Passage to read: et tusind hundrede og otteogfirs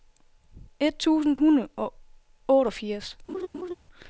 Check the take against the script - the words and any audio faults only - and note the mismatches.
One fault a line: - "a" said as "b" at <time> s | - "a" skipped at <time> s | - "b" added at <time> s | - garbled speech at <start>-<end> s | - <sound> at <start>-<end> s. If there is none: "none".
- laugh at 3.3-3.7 s